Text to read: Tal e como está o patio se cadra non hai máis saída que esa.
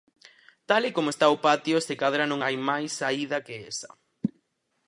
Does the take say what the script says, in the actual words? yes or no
yes